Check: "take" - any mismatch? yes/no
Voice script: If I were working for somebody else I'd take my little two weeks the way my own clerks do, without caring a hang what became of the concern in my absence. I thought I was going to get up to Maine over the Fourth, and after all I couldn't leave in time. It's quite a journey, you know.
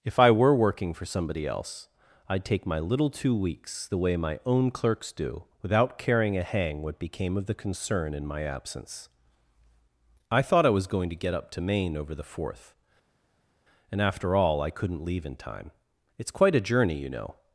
no